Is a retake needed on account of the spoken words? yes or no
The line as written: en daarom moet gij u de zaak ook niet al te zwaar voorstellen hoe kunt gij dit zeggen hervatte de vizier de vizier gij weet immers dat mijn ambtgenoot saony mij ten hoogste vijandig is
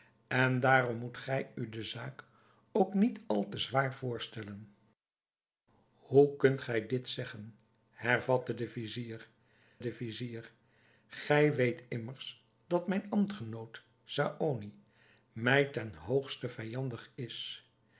no